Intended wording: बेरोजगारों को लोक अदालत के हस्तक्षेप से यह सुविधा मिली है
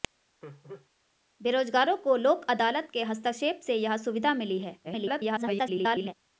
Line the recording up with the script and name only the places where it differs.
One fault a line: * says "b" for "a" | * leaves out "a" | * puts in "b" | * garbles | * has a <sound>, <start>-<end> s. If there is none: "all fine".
* has a laugh, 0.4-0.9 s
* garbles